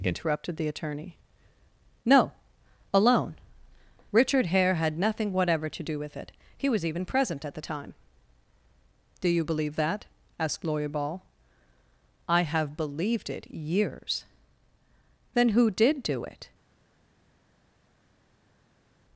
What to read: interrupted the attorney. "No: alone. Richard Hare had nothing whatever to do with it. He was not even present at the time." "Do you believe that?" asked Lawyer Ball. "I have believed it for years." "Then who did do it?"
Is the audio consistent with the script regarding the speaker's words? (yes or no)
no